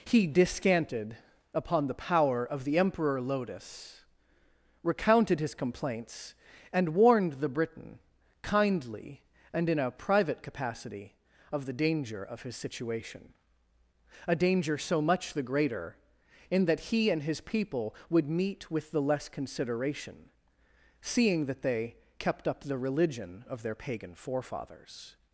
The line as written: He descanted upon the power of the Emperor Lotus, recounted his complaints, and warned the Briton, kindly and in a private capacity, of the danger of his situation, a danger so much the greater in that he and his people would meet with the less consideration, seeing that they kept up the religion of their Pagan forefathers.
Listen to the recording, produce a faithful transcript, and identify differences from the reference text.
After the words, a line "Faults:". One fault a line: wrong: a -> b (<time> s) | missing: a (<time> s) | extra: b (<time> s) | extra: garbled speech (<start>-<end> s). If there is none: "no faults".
He descanted upon the power of the Emperor Lotus, recounted his complaints, and warned the Briton, kindly and in a private capacity, of the danger of his situation, a danger so much the greater in that he and his people would meet with the less consideration, seeing that they kept up the religion of their Pagan forefathers.
Faults:
no faults